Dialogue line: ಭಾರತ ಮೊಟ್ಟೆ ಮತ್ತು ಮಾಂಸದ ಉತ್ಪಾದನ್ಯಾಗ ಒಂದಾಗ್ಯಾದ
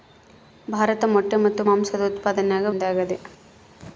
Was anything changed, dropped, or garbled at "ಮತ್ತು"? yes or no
no